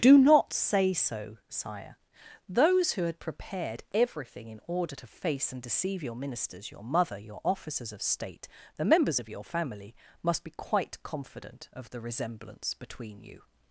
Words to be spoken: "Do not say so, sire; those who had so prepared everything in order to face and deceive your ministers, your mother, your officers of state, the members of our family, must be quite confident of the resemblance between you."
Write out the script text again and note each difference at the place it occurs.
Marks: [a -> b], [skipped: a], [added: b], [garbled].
"Do not say so, sire; those who had [skipped: so] prepared everything in order to face and deceive your ministers, your mother, your officers of state, the members of [our -> your] family, must be quite confident of the resemblance between you."